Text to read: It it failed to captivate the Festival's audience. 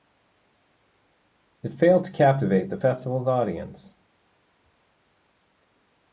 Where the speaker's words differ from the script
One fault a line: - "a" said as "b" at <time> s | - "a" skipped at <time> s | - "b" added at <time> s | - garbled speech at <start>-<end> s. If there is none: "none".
- "it" skipped at 1.7 s